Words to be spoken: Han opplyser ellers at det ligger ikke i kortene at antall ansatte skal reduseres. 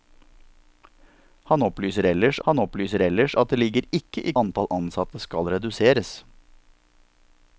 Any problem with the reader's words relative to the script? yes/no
yes